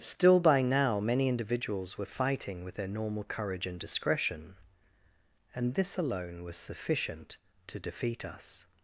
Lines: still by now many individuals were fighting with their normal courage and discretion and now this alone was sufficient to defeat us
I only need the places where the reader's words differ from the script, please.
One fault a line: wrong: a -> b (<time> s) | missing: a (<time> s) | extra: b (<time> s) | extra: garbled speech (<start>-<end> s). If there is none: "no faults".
missing: now (5.7 s)